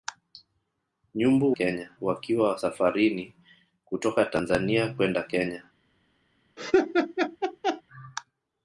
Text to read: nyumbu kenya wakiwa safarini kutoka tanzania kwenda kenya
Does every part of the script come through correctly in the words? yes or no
yes